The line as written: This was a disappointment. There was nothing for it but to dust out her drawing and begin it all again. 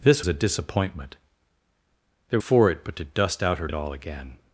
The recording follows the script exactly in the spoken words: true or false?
false